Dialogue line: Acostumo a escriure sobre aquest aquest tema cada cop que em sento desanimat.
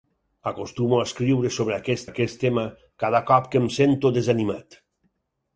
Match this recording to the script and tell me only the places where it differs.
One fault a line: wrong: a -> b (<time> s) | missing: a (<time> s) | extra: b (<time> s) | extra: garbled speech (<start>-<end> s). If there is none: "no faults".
no faults